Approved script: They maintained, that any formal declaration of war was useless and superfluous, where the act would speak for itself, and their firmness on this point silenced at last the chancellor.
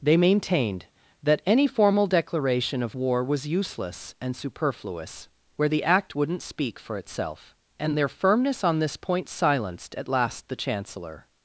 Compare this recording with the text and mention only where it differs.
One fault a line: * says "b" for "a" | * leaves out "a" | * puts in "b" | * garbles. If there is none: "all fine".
* says "wouldn't" for "would"